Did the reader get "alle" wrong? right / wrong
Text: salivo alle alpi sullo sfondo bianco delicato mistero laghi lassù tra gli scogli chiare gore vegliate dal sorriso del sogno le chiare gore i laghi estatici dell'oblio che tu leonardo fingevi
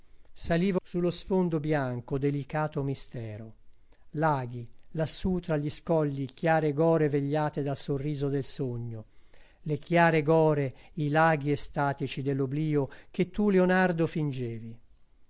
wrong